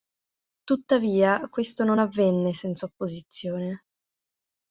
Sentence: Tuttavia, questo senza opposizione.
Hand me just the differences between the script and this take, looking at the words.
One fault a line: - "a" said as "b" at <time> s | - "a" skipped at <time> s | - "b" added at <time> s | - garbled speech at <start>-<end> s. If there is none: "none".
- "non avvenne" added at 1.8 s